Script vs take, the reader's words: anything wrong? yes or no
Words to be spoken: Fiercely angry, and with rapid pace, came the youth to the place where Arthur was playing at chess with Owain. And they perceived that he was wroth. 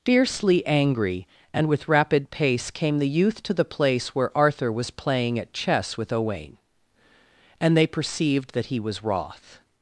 no